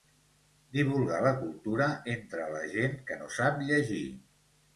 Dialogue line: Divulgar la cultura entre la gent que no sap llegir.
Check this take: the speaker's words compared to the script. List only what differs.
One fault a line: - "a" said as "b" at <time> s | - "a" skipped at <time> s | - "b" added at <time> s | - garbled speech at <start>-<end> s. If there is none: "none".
none